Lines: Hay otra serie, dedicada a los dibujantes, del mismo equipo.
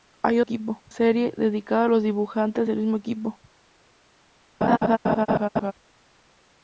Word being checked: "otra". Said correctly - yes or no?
no